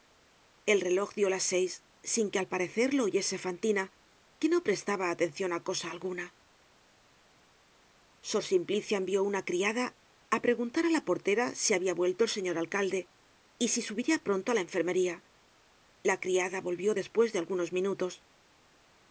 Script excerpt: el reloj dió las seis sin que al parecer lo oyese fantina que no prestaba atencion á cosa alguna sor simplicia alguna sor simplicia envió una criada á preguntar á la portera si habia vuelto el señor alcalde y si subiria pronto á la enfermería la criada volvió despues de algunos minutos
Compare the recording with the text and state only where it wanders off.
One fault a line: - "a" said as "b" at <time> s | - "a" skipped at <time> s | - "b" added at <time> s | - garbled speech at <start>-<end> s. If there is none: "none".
- "alguna sor simplicia" skipped at 9.0 s